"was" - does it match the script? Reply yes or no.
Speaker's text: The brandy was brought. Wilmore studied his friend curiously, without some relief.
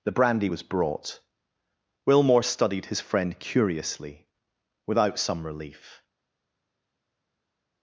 yes